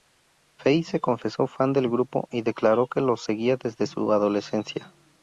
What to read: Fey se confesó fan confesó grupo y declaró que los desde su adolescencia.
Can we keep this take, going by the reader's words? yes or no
no